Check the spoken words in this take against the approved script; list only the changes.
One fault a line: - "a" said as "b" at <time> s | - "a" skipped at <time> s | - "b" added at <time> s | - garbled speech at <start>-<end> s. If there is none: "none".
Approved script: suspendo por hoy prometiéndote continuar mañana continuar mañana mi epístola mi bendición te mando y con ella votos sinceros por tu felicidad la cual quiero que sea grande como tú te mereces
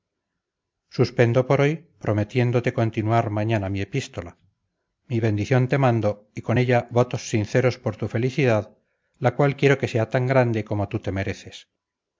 - "continuar mañana" skipped at 3.7 s
- "tan" added at 10.1 s